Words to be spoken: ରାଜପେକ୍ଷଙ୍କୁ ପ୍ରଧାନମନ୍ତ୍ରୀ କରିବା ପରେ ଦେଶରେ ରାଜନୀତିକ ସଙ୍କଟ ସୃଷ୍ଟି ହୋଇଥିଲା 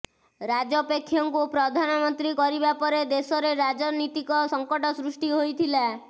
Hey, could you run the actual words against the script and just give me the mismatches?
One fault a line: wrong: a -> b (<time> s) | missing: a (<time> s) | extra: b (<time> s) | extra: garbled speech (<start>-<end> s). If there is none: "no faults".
no faults